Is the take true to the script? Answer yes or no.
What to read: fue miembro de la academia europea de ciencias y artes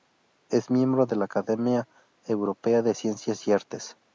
no